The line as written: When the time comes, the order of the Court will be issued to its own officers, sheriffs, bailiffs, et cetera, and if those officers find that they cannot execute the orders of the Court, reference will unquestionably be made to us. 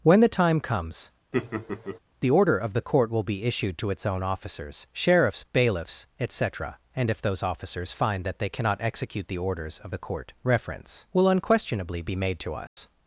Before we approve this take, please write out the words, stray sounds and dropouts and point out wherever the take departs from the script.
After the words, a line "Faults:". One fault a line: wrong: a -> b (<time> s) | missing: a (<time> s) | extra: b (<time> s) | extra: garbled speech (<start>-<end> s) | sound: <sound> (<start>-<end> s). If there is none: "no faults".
When the time comes, the order of the Court will be issued to its own officers, sheriffs, bailiffs, et cetera, and if those officers find that they cannot execute the orders of the Court, reference will unquestionably be made to us.
Faults:
sound: laugh (1.3-2.0 s)
sound: dropout (12.7-12.8 s)